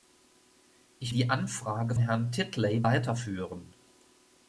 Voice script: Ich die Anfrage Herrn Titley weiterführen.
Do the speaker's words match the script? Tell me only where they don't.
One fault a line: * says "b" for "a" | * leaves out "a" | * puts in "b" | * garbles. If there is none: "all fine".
all fine